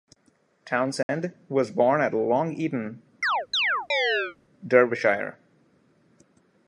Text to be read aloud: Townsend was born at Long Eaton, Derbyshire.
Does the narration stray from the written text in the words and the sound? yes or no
yes